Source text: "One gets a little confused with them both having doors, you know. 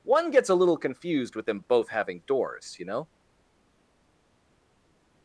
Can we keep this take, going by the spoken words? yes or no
yes